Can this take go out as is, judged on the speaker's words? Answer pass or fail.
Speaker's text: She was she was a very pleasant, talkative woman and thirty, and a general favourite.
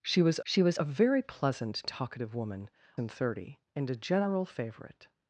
pass